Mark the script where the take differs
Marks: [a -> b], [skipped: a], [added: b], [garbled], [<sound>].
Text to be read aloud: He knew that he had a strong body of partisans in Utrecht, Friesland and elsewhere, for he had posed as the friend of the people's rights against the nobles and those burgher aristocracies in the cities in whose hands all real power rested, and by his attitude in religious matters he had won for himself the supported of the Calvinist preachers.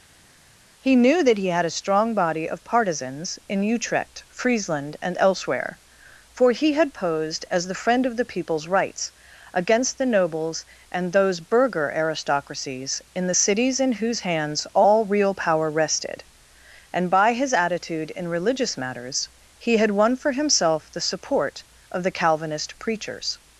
He knew that he had a strong body of partisans in Utrecht, Friesland and elsewhere, for he had posed as the friend of the people's rights against the nobles and those burgher aristocracies in the cities in whose hands all real power rested, and by his attitude in religious matters he had won for himself the [supported -> support] of the Calvinist preachers.